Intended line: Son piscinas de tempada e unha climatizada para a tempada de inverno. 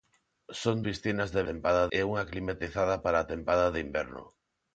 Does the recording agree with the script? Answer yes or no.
yes